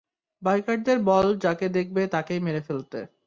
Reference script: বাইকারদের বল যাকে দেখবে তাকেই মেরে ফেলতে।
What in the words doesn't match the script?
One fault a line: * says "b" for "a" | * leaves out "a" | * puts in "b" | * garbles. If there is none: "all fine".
all fine